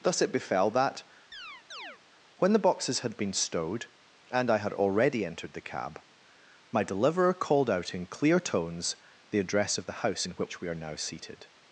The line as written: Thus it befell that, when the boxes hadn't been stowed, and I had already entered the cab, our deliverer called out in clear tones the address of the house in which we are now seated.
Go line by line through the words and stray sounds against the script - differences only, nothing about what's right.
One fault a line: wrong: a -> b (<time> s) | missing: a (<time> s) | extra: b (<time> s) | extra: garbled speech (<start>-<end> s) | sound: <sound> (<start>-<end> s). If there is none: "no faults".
sound: chirp (1.3-2.0 s)
wrong: hadn't -> had (3.0 s)
wrong: our -> my (6.7 s)